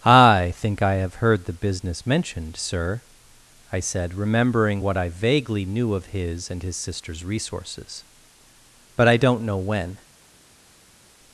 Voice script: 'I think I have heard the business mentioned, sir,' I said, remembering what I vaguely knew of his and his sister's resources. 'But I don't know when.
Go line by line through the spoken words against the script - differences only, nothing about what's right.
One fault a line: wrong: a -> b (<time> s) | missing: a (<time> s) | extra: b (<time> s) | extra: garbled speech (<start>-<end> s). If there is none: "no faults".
no faults